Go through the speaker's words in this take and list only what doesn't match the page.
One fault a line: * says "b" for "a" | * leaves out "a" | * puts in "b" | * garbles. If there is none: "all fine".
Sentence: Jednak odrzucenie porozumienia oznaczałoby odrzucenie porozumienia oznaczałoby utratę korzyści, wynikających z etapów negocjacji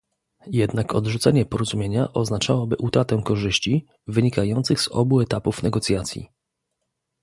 * leaves out "odrzucenie porozumienia oznaczałoby"
* puts in "obu"